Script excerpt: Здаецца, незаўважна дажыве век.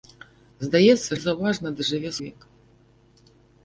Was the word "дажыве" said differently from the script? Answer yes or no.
no